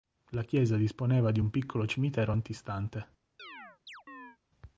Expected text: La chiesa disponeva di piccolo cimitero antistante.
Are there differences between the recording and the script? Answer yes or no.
yes